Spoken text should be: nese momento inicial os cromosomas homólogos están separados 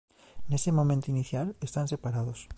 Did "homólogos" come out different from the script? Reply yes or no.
yes